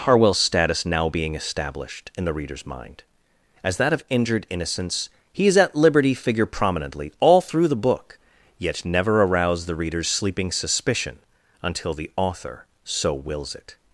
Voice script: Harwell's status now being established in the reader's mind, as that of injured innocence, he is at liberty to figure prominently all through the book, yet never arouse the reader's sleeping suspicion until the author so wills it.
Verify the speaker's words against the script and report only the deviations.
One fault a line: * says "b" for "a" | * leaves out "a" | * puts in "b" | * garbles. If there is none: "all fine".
* leaves out "to"